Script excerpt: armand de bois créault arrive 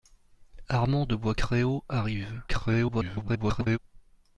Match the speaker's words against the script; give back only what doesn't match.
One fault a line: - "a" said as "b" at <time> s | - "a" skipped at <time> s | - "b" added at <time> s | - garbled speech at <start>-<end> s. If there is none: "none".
- garbled speech at 2.5-3.8 s